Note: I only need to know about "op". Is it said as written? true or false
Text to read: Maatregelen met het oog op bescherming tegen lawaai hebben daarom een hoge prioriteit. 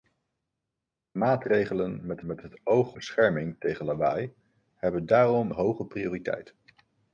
false